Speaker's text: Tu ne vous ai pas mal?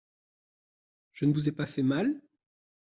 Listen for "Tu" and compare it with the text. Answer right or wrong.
wrong